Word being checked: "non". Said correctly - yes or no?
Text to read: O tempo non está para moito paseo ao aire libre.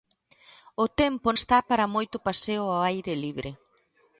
no